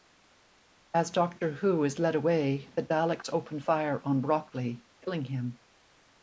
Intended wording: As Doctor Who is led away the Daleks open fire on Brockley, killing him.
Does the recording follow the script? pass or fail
pass